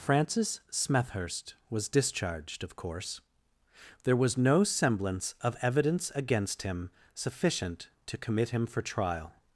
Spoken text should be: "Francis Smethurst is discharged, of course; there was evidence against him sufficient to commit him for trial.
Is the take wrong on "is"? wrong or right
wrong